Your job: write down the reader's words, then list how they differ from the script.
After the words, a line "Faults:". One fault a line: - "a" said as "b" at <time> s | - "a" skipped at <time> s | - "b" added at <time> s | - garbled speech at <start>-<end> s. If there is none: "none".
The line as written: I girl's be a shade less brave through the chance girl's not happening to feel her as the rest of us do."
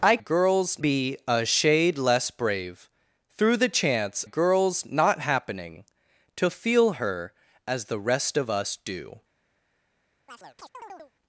I girl's be a shade less brave through the chance girl's not happening to feel her as the rest of us do."
Faults:
none